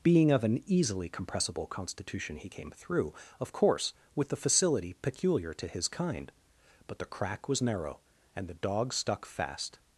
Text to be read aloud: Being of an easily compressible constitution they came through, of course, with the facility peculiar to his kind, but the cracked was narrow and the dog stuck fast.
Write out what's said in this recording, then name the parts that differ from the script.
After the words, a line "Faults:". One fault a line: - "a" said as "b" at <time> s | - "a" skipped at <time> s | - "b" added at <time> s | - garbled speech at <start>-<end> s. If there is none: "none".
Being of an easily compressible constitution he came through, of course, with the facility peculiar to his kind, but the crack was narrow and the dog stuck fast.
Faults:
- "they" said as "he" at 2.4 s
- "cracked" said as "crack" at 7.0 s